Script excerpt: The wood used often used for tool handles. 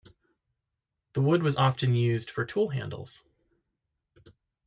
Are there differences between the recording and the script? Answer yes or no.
yes